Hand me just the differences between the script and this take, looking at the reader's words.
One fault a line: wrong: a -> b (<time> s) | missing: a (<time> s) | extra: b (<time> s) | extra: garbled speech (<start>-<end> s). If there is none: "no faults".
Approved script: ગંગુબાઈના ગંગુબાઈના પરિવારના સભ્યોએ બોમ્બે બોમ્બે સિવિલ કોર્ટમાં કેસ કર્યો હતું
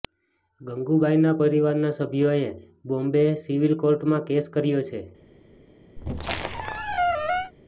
missing: ગંગુબાઈના (1.3 s)
missing: બોમ્બે (3.3 s)
wrong: હતું -> છે (4.9 s)